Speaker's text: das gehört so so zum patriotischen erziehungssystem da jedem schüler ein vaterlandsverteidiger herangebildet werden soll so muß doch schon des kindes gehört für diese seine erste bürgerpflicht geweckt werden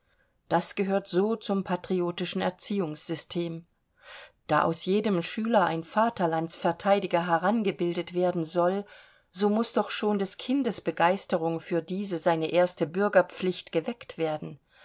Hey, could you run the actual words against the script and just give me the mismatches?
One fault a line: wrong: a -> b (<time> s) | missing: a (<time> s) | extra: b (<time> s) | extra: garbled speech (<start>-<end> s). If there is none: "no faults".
missing: so (1.4 s)
extra: aus (4.6 s)
wrong: gehört -> begeisterung (10.8 s)